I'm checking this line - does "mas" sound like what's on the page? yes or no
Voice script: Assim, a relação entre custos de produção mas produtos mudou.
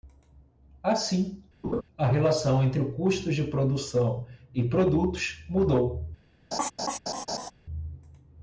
no